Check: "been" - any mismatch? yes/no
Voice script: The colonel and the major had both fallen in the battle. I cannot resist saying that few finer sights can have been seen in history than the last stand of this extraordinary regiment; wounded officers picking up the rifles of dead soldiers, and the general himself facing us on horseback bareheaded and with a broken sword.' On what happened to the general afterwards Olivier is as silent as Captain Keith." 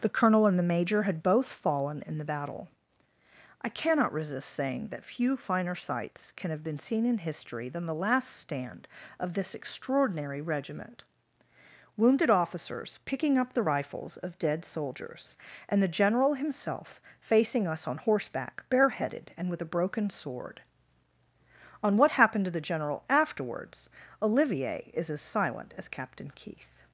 no